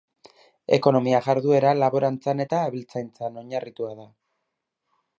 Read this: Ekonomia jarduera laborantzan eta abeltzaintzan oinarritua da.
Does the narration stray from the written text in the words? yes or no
no